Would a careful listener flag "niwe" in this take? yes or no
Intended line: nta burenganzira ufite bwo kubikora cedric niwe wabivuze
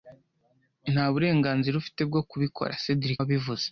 yes